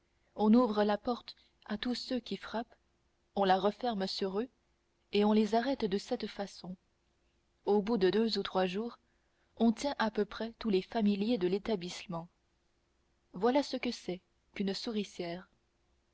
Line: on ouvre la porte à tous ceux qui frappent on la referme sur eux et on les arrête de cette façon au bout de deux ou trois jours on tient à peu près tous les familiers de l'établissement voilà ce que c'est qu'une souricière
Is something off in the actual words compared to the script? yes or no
no